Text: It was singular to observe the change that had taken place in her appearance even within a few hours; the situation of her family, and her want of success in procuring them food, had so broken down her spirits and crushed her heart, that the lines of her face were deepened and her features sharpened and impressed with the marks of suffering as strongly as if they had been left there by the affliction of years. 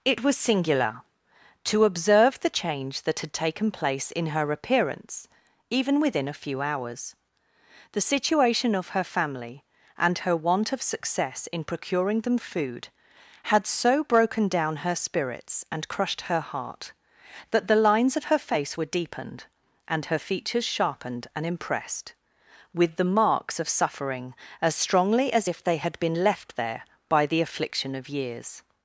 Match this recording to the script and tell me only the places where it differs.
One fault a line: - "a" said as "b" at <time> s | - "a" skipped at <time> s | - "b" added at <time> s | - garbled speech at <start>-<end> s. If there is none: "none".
none